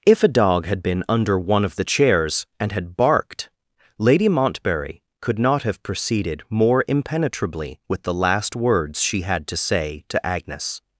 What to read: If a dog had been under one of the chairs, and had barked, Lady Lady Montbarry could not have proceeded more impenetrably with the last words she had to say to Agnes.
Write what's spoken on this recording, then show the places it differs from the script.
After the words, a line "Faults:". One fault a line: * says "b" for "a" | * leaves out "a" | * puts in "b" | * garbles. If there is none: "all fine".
If a dog had been under one of the chairs, and had barked, Lady Montbarry could not have proceeded more impenetrably with the last words she had to say to Agnes.
Faults:
* leaves out "Lady"